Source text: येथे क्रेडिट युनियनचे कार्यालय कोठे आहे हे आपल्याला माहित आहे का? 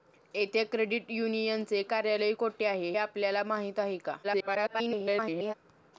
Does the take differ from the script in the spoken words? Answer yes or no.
yes